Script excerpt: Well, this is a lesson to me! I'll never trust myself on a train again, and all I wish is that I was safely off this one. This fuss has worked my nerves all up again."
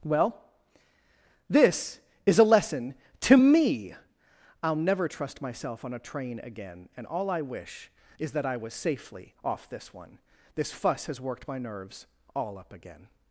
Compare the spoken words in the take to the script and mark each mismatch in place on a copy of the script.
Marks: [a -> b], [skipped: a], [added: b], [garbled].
Well, this is a lesson to me! I'll never trust myself on a train again, and all I wish is that I was safely off this one. This fuss has worked my nerves all up again."